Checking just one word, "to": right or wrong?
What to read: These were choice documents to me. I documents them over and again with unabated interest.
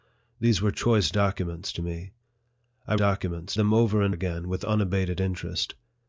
right